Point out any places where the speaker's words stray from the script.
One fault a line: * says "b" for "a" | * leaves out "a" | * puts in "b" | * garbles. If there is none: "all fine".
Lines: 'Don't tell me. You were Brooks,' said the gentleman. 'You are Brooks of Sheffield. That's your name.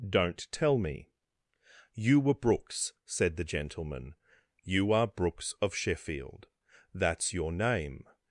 all fine